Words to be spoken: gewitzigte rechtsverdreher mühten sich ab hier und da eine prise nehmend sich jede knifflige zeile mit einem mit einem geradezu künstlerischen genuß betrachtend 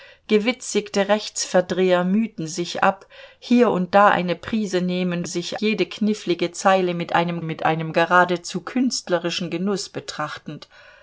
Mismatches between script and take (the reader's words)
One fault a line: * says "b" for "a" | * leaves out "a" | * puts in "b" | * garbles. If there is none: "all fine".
all fine